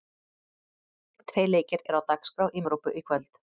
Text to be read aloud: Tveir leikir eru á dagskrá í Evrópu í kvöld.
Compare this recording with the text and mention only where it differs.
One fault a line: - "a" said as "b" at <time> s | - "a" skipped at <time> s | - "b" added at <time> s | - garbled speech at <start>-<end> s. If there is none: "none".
none